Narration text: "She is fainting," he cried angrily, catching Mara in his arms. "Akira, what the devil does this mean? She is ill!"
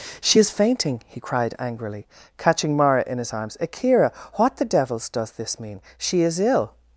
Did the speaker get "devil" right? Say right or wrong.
wrong